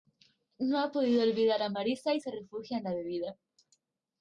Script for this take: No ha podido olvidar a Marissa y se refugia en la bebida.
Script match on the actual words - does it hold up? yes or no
yes